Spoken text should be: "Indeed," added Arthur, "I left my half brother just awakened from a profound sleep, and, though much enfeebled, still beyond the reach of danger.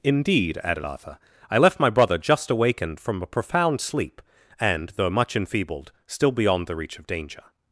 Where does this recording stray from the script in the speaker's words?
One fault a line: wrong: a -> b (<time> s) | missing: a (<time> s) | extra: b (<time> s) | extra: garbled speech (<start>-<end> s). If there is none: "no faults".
missing: half (1.9 s)